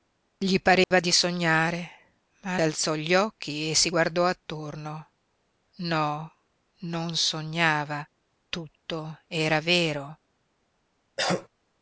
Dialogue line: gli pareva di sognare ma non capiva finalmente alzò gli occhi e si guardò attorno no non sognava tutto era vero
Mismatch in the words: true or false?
true